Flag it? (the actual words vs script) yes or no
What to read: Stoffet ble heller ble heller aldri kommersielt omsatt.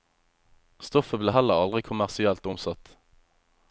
yes